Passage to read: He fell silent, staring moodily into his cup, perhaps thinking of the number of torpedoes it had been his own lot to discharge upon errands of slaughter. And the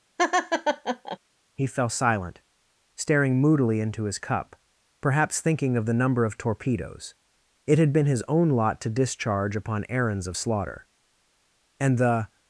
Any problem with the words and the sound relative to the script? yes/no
yes